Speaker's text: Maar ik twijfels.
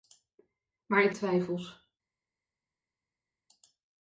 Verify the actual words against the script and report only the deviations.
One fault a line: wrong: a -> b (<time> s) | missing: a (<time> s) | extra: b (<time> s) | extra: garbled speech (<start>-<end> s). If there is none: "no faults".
no faults